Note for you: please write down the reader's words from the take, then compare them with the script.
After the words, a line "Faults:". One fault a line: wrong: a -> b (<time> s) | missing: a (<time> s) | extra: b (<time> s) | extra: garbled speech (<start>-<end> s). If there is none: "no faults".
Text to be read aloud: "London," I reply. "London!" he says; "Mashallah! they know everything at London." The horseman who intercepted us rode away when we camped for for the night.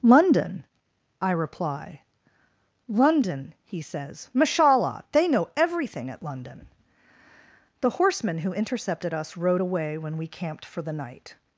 "London," I reply. "London!" he says; "Mashallah! they know everything at London." The horseman who intercepted us rode away when we camped for the night.
Faults:
missing: for (10.8 s)